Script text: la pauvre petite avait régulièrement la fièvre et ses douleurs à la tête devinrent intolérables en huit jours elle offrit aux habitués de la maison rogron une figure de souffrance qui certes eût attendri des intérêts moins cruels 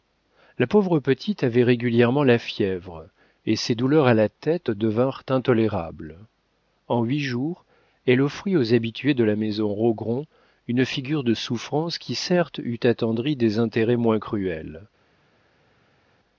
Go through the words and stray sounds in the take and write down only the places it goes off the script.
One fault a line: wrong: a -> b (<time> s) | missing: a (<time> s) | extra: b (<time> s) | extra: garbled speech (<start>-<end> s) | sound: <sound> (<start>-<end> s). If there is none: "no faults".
no faults